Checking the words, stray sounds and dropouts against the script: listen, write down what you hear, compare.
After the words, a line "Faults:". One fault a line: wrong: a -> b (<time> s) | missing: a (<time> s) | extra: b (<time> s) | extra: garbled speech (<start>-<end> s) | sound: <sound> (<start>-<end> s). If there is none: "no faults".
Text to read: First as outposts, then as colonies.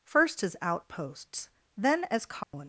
First as outposts, then as colonies.
Faults:
sound: dropout (2.4-2.5 s)